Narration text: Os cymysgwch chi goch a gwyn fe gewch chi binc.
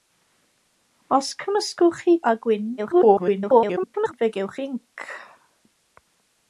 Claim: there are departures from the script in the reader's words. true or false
true